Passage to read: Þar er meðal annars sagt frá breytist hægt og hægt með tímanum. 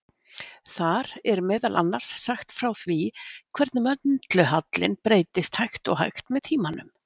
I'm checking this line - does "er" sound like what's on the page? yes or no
yes